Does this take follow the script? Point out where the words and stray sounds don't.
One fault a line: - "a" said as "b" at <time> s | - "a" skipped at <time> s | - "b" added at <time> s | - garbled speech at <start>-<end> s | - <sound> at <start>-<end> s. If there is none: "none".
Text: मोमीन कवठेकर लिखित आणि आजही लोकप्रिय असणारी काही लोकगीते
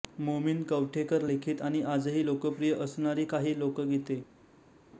none